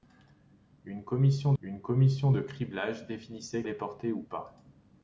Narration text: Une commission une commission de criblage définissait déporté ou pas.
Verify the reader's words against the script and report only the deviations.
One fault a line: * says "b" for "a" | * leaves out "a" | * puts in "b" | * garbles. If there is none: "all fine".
all fine